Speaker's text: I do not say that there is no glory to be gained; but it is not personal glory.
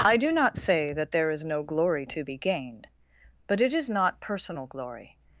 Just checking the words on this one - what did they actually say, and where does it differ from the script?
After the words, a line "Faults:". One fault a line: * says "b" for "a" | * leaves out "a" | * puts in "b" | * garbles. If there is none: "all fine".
I do not say that there is no glory to be gained; but it is not personal glory.
Faults:
all fine